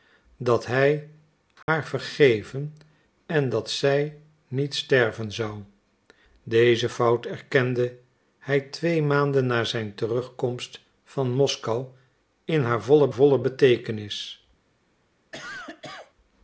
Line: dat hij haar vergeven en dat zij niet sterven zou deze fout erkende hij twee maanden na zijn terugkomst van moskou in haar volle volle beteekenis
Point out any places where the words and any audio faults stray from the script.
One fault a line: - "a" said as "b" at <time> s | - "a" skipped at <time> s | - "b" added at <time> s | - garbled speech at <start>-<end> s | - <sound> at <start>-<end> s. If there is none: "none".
- dropout at 1.6-1.7 s
- cough at 15.3-16.1 s